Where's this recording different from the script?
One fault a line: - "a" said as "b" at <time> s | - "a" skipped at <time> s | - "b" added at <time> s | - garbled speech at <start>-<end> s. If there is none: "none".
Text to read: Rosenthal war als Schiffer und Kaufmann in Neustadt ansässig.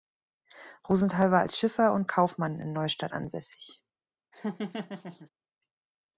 none